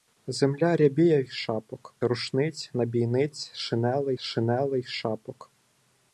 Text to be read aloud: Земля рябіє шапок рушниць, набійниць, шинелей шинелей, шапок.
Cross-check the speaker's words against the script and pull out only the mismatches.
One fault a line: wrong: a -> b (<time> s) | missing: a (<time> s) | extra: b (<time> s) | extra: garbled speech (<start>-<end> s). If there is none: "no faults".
no faults